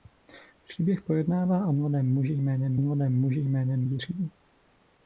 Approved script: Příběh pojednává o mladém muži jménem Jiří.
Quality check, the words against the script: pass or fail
fail